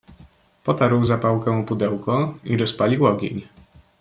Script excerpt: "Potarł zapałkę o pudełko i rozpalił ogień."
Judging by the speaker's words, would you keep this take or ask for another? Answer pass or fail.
pass